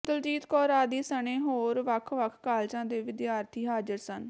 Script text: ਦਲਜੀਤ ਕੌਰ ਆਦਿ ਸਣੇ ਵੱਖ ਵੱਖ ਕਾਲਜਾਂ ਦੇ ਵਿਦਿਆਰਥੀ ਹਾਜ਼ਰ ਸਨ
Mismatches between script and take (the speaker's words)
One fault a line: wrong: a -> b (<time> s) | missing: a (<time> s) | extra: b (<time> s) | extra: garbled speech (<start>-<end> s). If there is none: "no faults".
extra: ਹੋਰ (1.4 s)